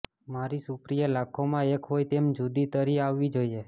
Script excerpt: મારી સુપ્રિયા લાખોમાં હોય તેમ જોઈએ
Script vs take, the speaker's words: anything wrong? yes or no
yes